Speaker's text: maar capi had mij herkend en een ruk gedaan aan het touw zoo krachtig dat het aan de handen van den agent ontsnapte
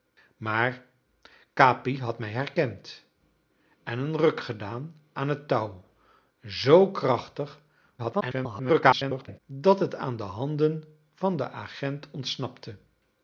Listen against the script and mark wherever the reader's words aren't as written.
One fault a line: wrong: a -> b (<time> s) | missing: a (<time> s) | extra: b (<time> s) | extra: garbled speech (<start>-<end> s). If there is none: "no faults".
extra: garbled speech (8.0-9.4 s)